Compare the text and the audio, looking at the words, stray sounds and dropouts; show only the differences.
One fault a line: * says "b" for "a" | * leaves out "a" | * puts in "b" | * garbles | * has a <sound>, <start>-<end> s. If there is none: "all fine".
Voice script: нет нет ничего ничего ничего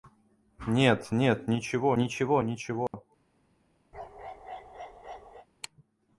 * has a dropout, 2.9-2.9 s
* has a bark, 3.9-5.5 s